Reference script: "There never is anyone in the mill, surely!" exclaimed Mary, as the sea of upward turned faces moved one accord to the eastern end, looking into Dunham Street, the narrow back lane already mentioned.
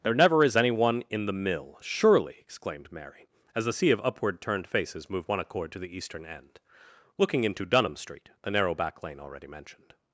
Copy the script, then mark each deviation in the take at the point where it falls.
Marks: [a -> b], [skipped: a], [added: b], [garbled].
"There never is anyone in the mill, surely!" exclaimed Mary, as the sea of upward turned faces moved one accord to the eastern end, looking into Dunham Street, the narrow back lane already mentioned.